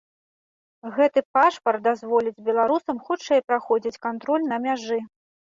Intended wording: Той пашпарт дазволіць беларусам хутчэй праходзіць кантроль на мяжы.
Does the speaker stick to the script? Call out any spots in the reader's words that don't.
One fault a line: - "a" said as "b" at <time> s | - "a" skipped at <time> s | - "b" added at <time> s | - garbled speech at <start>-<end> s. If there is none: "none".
- "Той" said as "Гэты" at 0.9 s